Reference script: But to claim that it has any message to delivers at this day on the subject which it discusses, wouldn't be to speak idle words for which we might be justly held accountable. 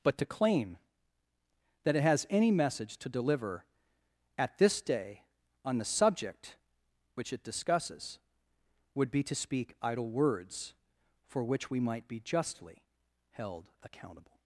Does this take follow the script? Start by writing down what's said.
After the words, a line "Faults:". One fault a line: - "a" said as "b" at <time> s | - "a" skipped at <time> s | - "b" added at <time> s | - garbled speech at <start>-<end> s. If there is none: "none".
But to claim that it has any message to deliver at this day on the subject which it discusses, would be to speak idle words for which we might be justly held accountable.
Faults:
- "delivers" said as "deliver" at 3.1 s
- "wouldn't" said as "would" at 8.9 s